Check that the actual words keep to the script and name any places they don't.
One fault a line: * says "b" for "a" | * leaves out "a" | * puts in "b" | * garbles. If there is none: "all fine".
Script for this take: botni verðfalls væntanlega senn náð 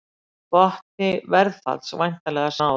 * leaves out "senn"